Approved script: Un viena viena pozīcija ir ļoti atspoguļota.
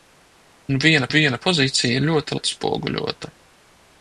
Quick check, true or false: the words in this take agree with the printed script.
true